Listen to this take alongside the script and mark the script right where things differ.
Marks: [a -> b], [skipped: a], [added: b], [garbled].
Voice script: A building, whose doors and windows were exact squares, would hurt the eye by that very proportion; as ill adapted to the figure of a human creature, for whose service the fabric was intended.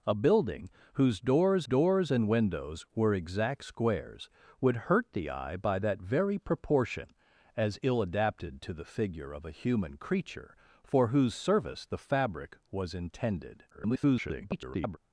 A building, whose doors [added: doors] and windows were exact squares, would hurt the eye by that very proportion; as ill adapted to the figure of a human creature, for whose service the fabric was intended. [garbled]